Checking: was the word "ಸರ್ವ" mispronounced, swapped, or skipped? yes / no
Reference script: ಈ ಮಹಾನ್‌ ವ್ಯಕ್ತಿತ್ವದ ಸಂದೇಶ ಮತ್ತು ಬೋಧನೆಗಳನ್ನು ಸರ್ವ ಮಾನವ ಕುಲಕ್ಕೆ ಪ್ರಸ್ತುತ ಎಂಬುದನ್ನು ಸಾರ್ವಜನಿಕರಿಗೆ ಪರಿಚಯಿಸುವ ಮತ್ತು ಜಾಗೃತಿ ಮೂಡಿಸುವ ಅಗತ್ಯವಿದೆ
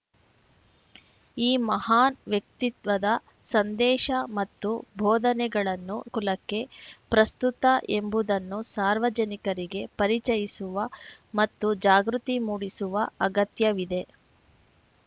yes